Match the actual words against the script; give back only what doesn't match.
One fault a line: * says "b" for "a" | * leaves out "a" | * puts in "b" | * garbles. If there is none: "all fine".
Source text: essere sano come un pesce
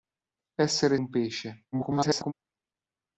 * leaves out "sano come"
* garbles